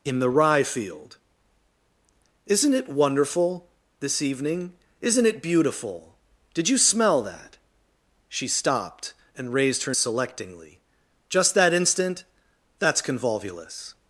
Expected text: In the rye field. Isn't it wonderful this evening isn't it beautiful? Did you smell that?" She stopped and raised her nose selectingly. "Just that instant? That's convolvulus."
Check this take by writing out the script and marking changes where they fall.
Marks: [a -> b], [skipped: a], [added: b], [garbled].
In the rye field. Isn't it wonderful this evening isn't it beautiful? Did you smell that?" She stopped and raised her [skipped: nose] selectingly. "Just that instant? That's convolvulus."